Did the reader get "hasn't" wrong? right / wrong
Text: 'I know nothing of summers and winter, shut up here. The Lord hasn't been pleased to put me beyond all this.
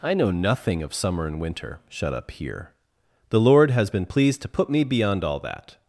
wrong